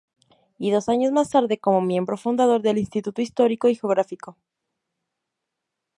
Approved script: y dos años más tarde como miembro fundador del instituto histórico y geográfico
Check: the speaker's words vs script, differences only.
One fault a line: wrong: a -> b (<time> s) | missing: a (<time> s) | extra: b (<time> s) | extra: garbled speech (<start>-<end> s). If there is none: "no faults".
no faults